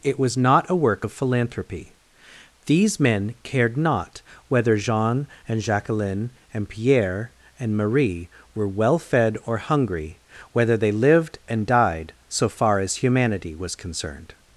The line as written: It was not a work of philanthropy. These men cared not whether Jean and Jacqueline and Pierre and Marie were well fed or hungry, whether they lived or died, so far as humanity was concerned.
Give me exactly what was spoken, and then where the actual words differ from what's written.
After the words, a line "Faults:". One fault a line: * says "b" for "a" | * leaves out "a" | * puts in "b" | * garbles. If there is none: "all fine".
It was not a work of philanthropy. These men cared not whether Jean and Jacqueline and Pierre and Marie were well fed or hungry, whether they lived and died, so far as humanity was concerned.
Faults:
* says "and" for "or"